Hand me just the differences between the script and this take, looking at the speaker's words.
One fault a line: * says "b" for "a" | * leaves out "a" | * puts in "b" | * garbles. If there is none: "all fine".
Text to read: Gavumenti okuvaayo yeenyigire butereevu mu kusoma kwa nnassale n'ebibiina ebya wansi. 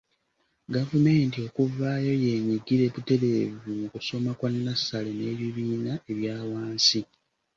all fine